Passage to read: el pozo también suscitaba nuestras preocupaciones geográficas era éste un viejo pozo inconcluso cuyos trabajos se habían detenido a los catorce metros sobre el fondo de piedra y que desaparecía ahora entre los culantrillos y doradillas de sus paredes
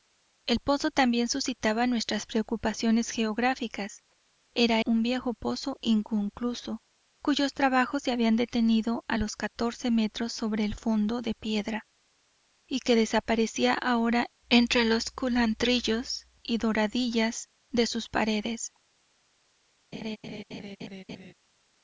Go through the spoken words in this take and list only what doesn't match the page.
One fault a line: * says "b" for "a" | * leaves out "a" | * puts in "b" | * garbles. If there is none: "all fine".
* leaves out "éste"